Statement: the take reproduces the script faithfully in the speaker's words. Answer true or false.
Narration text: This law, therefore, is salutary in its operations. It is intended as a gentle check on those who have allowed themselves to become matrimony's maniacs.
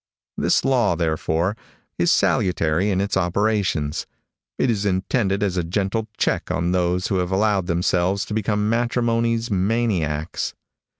true